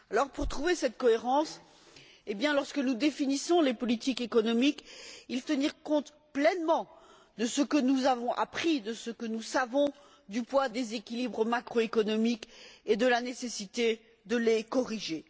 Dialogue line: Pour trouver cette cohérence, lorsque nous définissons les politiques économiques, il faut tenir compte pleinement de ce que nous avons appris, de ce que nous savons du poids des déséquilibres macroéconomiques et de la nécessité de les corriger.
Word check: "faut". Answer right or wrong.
wrong